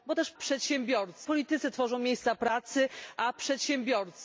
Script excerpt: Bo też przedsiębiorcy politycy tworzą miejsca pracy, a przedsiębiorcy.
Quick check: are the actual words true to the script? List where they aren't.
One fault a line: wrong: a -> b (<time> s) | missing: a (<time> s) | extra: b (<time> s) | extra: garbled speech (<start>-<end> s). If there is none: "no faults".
no faults